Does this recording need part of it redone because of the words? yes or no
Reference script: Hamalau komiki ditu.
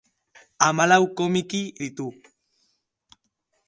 no